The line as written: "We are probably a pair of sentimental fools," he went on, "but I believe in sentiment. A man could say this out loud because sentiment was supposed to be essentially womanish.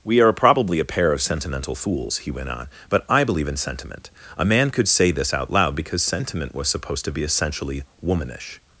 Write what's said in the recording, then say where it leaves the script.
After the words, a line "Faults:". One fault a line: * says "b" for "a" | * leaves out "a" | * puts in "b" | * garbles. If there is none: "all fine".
"We are probably a pair of sentimental fools," he went on, "but I believe in sentiment. A man could say this out loud because sentiment was supposed to be essentially womanish.
Faults:
all fine